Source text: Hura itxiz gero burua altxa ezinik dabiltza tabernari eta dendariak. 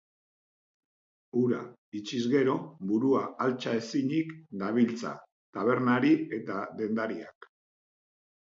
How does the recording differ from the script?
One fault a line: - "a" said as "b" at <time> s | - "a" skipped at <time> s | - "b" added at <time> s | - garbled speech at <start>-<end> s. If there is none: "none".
none